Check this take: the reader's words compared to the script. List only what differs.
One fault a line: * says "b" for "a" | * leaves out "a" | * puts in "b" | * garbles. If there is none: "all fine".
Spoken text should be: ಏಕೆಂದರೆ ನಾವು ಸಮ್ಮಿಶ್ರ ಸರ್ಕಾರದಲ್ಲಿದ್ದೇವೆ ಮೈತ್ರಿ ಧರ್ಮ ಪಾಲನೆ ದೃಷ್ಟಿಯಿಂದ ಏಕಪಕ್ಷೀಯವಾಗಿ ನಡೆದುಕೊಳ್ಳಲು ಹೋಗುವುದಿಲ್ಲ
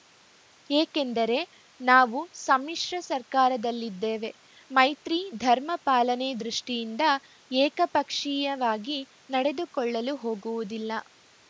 all fine